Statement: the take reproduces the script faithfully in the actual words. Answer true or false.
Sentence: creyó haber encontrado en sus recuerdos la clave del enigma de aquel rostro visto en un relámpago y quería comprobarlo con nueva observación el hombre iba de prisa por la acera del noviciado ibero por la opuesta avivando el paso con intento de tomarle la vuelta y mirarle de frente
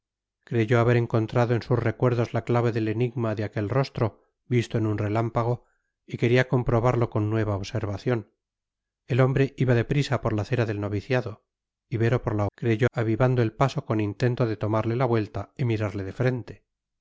false